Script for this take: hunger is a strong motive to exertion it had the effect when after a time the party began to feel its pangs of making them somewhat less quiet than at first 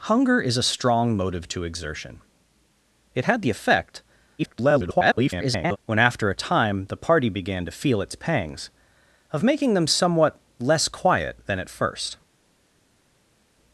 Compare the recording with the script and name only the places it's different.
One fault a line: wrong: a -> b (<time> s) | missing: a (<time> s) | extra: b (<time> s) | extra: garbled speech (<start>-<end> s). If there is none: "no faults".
extra: garbled speech (4.4-5.8 s)